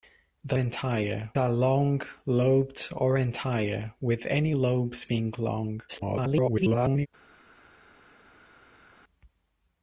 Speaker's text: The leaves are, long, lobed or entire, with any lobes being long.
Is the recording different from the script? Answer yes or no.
yes